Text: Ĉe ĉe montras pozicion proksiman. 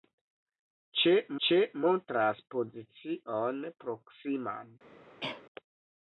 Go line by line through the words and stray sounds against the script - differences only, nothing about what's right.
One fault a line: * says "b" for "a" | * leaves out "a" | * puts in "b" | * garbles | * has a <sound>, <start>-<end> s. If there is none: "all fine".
* has a cough, 5.2-5.4 s